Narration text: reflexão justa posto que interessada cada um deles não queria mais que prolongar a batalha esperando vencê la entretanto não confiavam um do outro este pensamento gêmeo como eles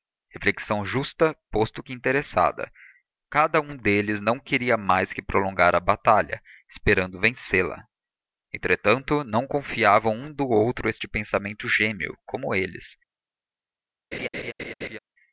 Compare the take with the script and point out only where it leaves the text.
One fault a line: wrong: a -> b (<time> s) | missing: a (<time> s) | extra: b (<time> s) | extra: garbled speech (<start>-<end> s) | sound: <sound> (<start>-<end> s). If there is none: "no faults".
sound: laugh (14.1-15.0 s)